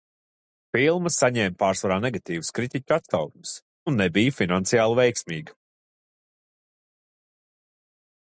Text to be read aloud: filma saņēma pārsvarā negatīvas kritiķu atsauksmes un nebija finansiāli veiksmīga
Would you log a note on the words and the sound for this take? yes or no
no